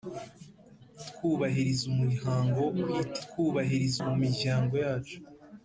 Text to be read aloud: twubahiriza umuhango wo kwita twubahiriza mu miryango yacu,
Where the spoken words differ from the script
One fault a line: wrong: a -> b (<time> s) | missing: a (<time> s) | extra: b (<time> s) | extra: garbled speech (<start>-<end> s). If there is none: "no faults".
no faults